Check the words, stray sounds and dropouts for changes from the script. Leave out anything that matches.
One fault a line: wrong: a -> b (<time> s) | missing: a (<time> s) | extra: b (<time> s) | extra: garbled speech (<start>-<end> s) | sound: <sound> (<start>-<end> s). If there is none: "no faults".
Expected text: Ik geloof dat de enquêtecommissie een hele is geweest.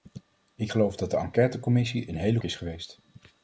no faults